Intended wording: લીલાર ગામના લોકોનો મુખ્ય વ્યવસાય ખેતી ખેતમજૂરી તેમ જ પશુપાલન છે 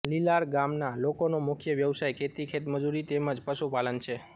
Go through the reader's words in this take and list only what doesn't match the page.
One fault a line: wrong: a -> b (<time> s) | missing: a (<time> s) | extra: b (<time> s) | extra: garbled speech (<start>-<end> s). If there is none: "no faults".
no faults